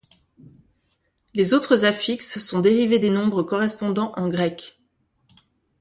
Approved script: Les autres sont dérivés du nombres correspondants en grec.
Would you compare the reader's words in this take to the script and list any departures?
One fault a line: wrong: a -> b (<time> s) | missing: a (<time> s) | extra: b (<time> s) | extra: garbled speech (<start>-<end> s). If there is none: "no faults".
extra: affixes (1.9 s)
wrong: du -> des (3.0 s)